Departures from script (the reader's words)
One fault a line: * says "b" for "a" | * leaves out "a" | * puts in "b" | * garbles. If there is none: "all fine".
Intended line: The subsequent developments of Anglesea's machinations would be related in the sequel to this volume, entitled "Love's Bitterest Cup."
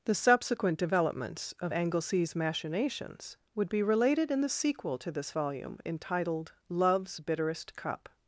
all fine